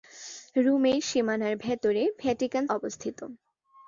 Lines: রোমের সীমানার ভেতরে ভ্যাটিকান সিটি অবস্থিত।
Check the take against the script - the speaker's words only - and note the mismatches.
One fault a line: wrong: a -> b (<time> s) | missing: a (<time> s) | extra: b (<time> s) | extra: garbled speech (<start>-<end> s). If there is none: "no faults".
missing: সিটি (2.6 s)